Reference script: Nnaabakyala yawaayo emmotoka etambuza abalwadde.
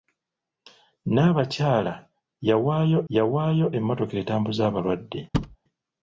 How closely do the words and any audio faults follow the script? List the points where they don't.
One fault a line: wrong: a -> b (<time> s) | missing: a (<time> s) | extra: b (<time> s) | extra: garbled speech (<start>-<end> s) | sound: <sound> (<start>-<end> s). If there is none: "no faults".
extra: yawaayo (3.1 s)
sound: thud (5.3-5.6 s)